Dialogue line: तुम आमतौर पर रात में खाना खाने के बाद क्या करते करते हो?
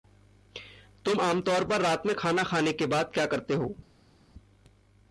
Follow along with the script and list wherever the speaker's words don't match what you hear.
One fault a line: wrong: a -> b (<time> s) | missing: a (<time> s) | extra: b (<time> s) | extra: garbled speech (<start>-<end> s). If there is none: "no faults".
missing: करते (3.5 s)